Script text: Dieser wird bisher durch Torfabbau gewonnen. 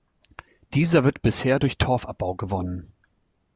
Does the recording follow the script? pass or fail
pass